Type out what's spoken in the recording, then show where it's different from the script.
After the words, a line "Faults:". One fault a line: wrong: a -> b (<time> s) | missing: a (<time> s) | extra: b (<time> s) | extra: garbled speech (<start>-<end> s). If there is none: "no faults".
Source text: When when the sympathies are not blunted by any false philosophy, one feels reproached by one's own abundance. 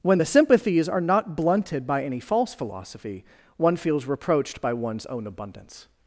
When the sympathies are not blunted by any false philosophy, one feels reproached by one's own abundance.
Faults:
missing: when (0.2 s)